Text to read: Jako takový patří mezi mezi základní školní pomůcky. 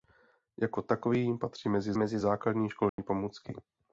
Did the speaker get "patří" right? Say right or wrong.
right